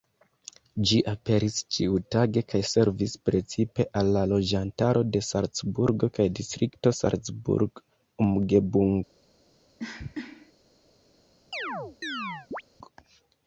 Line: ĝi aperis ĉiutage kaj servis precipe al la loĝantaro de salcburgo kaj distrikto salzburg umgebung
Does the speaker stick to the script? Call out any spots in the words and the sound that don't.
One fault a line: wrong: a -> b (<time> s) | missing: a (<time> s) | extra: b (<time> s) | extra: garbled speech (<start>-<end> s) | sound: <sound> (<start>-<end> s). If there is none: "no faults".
sound: cough (9.8-10.5 s)
sound: chirp (11.5-12.6 s)